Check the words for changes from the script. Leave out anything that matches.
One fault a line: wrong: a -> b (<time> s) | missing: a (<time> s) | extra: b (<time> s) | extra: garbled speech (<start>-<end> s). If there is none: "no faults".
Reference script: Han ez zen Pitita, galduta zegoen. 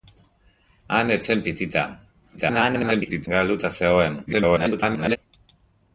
extra: garbled speech (2.4-3.3 s)
extra: garbled speech (4.3-5.2 s)